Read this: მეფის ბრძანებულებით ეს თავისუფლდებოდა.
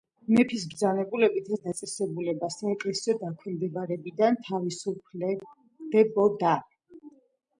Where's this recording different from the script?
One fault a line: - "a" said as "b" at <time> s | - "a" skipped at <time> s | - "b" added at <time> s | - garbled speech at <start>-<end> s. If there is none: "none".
- "დაწესებულება საეკლესიო დაქვემდებარებიდან" added at 1.7 s